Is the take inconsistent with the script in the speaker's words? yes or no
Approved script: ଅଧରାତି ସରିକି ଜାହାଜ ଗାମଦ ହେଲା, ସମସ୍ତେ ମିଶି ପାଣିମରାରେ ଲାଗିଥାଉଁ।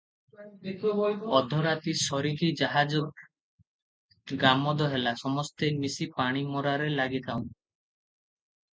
no